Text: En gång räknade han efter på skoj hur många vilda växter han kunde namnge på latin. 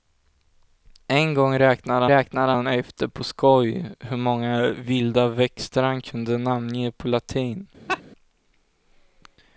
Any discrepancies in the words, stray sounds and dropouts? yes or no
yes